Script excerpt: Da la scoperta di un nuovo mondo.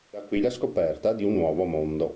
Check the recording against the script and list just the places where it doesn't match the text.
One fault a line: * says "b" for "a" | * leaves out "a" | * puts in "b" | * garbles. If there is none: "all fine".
* puts in "qui"